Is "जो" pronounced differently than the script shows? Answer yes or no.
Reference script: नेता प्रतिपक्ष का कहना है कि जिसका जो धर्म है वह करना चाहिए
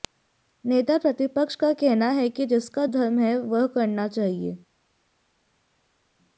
yes